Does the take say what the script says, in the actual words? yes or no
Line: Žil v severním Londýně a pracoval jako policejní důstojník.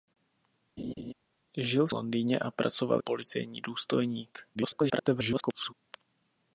no